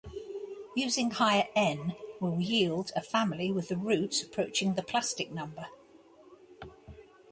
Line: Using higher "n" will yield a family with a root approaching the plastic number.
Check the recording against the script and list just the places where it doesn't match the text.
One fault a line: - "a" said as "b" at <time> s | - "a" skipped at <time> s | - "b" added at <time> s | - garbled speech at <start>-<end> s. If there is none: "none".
none